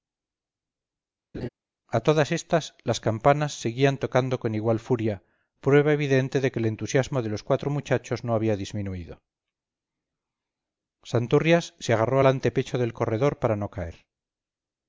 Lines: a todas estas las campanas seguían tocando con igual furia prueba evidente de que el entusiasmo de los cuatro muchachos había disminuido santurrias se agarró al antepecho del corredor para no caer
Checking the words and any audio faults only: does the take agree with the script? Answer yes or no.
no